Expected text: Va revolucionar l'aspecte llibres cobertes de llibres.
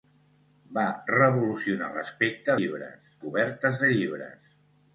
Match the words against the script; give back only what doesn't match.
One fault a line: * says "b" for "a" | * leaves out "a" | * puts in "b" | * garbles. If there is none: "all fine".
all fine